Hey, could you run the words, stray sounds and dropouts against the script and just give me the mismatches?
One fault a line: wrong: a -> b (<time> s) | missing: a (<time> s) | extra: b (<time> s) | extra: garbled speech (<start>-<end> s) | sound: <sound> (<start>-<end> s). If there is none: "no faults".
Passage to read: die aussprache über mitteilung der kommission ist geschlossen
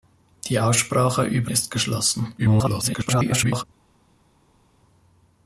missing: mitteilung der kommission (1.5 s)
extra: garbled speech (2.4-3.6 s)